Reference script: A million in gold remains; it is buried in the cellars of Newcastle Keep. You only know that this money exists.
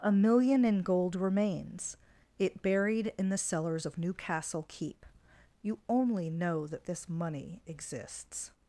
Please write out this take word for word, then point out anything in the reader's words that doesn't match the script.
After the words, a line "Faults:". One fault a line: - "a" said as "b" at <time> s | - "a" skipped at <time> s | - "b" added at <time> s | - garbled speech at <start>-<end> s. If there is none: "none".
A million in gold remains; it buried in the cellars of Newcastle Keep. You only know that this money exists.
Faults:
- "is" skipped at 2.6 s